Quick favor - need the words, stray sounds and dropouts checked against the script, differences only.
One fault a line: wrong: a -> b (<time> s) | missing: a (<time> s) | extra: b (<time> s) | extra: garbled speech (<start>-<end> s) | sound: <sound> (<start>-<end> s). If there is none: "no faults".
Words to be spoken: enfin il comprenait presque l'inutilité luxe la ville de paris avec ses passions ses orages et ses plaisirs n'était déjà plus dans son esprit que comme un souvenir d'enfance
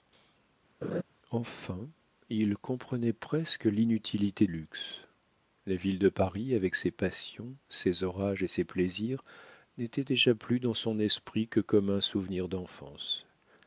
sound: laugh (0.8-1.0 s)